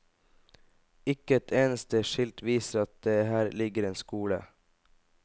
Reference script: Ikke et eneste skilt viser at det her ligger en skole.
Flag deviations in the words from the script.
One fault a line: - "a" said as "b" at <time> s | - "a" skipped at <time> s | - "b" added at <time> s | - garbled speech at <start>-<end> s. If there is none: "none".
none